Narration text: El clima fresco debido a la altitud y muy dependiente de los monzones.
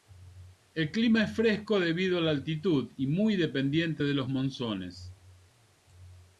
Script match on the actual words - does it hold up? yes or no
no